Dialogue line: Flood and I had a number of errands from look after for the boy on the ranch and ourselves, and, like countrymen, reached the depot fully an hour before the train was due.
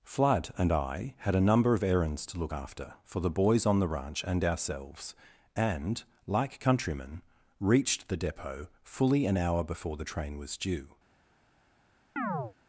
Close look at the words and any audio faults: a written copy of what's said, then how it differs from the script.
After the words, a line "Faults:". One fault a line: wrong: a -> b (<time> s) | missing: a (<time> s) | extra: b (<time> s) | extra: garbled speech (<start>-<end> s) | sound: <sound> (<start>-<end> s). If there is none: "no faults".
Flood and I had a number of errands to look after for the boys on the ranch and ourselves, and, like countrymen, reached the depot fully an hour before the train was due.
Faults:
wrong: from -> to (2.3 s)
wrong: boy -> boys (3.3 s)
sound: chirp (12.2-12.5 s)